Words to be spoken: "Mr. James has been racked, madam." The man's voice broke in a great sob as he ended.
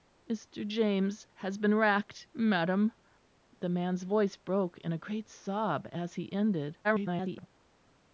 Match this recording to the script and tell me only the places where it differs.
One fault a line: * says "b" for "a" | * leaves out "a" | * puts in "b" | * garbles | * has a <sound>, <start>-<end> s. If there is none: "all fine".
* garbles